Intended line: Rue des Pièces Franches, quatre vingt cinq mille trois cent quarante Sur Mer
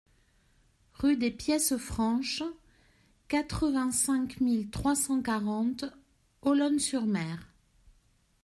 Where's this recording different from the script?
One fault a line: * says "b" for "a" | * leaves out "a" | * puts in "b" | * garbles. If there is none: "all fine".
* puts in "Olonne"